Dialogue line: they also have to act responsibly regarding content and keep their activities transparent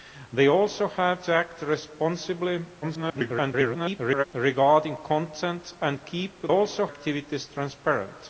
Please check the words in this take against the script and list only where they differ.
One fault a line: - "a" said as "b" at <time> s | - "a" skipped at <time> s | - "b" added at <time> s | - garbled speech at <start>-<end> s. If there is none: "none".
- garbled speech at 2.8-4.2 s
- "their" said as "also" at 6.5 s